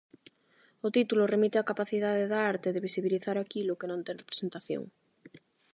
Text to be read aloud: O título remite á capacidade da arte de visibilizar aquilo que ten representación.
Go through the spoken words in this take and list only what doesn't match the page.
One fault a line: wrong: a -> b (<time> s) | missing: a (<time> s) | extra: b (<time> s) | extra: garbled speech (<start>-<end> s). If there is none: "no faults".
extra: non (3.9 s)